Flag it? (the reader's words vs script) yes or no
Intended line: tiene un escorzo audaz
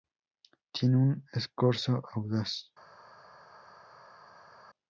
no